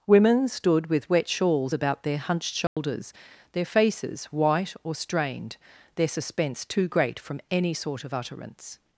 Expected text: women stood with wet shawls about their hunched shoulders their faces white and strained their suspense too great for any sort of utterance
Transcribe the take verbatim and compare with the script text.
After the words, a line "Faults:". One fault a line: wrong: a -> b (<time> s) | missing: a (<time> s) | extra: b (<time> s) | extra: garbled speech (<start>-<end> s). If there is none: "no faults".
women stood with wet shawls about their hunched shoulders their faces white or strained their suspense too great from any sort of utterance
Faults:
wrong: and -> or (4.8 s)
wrong: for -> from (7.2 s)